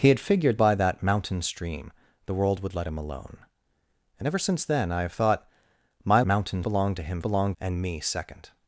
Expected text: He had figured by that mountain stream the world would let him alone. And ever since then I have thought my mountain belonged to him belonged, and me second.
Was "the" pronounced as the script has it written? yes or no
yes